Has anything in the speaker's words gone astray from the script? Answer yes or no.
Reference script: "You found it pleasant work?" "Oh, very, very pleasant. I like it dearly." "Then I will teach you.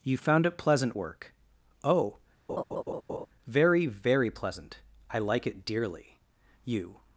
yes